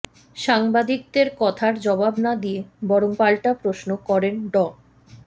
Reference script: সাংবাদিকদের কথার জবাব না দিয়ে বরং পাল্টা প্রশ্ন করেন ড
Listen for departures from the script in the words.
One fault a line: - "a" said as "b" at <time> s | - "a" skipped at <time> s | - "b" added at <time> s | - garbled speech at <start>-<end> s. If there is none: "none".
none